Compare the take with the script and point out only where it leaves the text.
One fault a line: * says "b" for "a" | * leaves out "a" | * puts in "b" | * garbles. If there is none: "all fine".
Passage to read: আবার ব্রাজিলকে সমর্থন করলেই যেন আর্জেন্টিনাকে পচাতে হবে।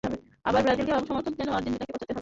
* leaves out "করলেই"